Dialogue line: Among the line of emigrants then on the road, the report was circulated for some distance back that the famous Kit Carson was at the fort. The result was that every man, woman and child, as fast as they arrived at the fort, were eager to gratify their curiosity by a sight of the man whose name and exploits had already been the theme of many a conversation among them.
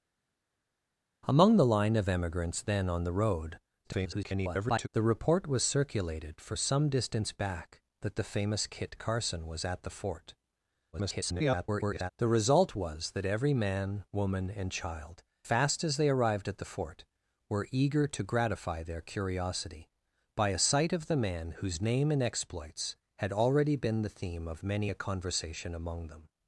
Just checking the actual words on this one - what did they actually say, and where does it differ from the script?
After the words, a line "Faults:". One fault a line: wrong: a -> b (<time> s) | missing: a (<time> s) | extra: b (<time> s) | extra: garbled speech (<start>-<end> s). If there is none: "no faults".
Among the line of emigrants then on the road, [garbled] the report was circulated for some distance back that the famous Kit Carson was at the fort. [garbled] The result was that every man, woman and child, fast as they arrived at the fort, were eager to gratify their curiosity by a sight of the man whose name and exploits had already been the theme of many a conversation among them.
Faults:
extra: garbled speech (3.8-4.9 s)
extra: garbled speech (10.9-12.1 s)
missing: as (15.2 s)